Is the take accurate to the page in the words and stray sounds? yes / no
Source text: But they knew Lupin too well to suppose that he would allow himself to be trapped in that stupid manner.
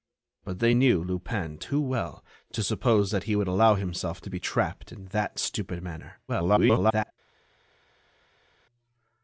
no